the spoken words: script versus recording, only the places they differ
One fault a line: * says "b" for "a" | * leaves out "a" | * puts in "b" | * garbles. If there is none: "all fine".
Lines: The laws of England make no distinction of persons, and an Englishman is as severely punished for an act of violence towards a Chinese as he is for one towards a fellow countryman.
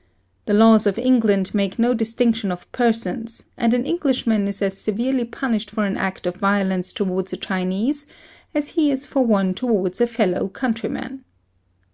all fine